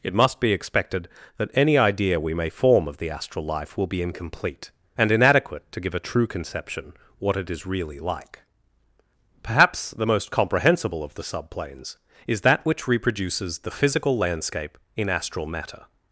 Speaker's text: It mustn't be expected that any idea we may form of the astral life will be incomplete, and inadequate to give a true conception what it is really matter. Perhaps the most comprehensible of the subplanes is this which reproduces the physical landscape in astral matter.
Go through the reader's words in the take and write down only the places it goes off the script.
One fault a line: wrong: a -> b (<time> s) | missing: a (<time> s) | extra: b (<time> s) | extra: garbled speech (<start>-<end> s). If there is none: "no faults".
wrong: mustn't -> must (0.1 s)
wrong: matter -> like (8.0 s)
wrong: this -> that (12.4 s)